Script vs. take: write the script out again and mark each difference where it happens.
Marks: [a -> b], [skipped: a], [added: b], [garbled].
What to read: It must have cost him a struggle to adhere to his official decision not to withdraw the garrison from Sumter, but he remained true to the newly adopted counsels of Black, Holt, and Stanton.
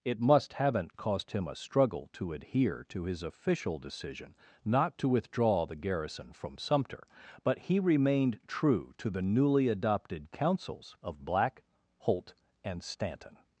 It must [have -> haven't] cost him a struggle to adhere to his official decision not to withdraw the garrison from Sumter, but he remained true to the newly adopted counsels of Black, Holt, and Stanton.